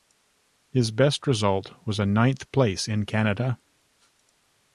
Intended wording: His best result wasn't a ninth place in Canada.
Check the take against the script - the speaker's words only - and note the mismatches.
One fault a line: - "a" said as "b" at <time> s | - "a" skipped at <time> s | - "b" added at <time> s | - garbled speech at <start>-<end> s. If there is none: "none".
- "wasn't" said as "was" at 1.9 s